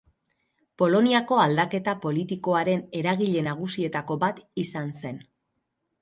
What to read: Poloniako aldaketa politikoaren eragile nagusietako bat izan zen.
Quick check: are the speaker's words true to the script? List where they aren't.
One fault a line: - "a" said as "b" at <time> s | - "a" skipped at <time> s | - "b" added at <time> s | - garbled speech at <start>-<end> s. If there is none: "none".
none